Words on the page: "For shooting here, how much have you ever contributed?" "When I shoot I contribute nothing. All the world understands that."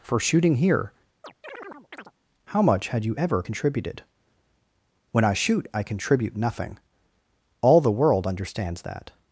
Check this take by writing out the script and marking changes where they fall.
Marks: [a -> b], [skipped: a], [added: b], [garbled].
"For shooting here, how much [have -> had] you ever contributed?" "When I shoot I contribute nothing. All the world understands that."